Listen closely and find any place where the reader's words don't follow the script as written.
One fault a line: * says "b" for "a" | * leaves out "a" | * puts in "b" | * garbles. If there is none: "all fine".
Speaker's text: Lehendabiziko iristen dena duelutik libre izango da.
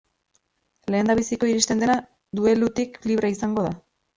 all fine